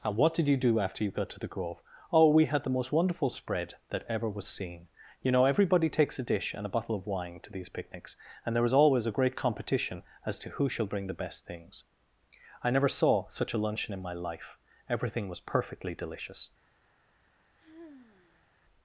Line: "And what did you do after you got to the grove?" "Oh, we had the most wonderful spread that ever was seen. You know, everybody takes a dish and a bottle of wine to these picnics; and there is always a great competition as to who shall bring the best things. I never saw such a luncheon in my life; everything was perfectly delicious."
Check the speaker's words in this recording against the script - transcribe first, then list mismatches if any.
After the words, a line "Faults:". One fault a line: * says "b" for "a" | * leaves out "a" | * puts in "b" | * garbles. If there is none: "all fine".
"And what did you do after you got to the grove?" "Oh, we had the most wonderful spread that ever was seen. You know, everybody takes a dish and a bottle of wine to these picnics; and there is always a great competition as to who shall bring the best things. I never saw such a luncheon in my life; everything was perfectly delicious."
Faults:
all fine